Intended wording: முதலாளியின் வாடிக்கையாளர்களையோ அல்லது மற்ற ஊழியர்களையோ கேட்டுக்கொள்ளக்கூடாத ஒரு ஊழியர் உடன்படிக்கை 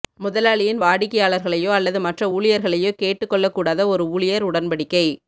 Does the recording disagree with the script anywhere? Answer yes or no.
no